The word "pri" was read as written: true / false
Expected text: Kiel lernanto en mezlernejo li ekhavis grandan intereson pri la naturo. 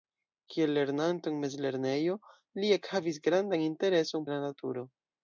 false